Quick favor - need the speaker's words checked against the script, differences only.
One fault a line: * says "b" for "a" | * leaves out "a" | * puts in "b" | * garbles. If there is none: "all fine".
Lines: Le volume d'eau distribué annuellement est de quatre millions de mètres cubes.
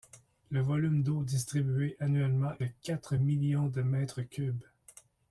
* leaves out "est"